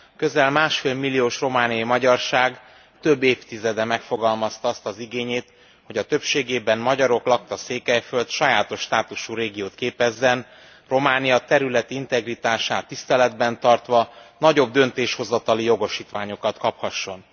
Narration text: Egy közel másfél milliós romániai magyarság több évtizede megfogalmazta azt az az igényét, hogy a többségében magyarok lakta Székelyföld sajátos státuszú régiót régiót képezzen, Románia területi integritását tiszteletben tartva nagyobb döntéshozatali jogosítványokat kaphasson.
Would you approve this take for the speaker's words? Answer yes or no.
no